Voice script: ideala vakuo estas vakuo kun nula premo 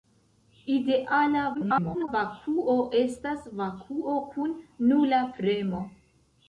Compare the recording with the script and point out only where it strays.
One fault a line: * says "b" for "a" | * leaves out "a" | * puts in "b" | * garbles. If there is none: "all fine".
* garbles